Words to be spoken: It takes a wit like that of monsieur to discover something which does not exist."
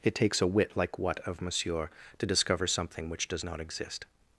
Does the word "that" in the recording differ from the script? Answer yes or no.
yes